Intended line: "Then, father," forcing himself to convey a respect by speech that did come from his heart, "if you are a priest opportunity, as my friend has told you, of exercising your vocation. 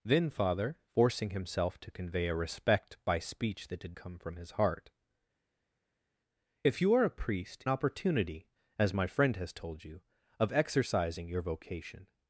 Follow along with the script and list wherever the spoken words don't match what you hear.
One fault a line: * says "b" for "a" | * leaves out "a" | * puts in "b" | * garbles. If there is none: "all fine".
all fine